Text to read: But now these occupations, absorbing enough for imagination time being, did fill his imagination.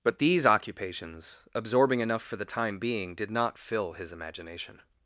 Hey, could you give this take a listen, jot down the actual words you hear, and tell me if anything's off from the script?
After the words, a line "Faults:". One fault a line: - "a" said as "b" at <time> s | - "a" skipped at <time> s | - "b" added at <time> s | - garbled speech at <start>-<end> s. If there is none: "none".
But these occupations, absorbing enough for the time being, did not fill his imagination.
Faults:
- "now" skipped at 0.2 s
- "imagination" said as "the" at 2.4 s
- "not" added at 3.3 s